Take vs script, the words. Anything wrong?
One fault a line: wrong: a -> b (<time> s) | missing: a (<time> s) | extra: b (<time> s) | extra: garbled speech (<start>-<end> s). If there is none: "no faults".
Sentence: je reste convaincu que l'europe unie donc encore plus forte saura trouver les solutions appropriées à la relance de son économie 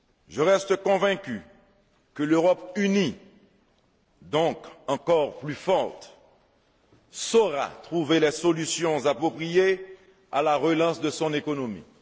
no faults